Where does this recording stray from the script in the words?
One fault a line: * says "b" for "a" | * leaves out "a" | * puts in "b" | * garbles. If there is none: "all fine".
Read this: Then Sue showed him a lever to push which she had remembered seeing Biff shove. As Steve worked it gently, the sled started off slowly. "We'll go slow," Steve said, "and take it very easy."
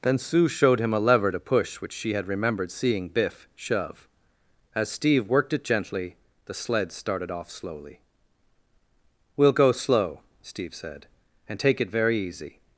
all fine